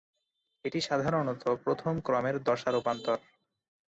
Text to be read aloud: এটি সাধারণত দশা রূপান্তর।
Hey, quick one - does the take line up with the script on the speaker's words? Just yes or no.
no